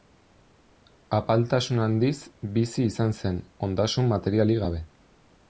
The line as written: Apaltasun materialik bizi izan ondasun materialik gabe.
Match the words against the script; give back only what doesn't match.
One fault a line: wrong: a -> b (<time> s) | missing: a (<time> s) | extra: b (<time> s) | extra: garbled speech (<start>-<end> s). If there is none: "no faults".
wrong: materialik -> handiz (1.8 s)
extra: zen (3.2 s)